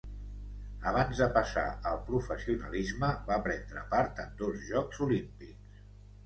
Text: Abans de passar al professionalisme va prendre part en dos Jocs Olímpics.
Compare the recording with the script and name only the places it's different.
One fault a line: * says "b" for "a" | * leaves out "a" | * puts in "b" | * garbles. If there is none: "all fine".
all fine